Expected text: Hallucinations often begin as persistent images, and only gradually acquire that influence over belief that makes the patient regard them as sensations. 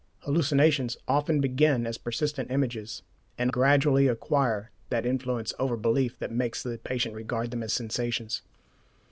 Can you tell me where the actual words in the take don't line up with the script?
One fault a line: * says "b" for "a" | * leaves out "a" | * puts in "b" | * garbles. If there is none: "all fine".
* leaves out "only"